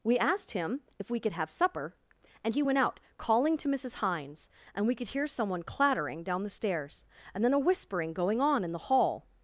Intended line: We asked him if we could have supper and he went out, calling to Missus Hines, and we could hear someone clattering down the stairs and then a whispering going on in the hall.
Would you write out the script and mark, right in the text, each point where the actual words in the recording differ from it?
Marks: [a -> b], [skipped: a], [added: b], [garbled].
We asked him if we could have supper and he went out, calling to Missus Hines, and we could hear someone clattering down the stairs and then a whispering going on in the hall.